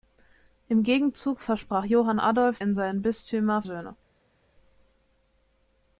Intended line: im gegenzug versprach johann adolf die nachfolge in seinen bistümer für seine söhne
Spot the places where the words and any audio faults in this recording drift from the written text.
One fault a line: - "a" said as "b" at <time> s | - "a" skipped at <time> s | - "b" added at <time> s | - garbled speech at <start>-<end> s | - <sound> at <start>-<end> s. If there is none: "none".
- "die nachfolge" skipped at 2.6 s
- "für seine" skipped at 3.6 s